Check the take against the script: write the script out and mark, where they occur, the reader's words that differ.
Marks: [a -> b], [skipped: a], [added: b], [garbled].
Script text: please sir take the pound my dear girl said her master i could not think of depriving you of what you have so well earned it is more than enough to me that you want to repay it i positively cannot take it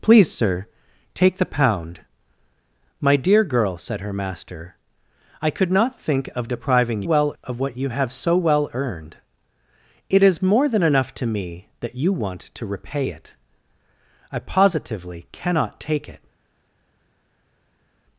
please sir take the pound my dear girl said her master i could not think of depriving [you -> well] of what you have so well earned it is more than enough to me that you want to repay it i positively cannot take it